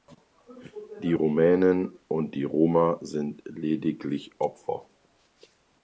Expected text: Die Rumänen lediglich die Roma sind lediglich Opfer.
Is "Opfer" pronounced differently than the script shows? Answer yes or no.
no